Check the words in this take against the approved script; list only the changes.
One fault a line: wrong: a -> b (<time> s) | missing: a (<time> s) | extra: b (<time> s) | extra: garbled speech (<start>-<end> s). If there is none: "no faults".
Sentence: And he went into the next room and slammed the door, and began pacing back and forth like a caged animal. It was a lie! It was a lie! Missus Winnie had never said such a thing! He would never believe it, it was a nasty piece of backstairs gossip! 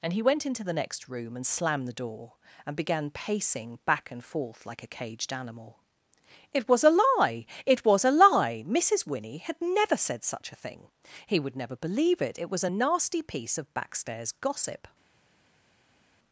no faults